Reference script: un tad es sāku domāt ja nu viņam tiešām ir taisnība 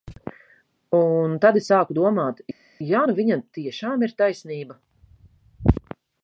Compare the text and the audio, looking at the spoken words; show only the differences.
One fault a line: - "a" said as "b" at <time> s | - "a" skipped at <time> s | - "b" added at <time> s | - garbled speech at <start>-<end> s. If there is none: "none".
none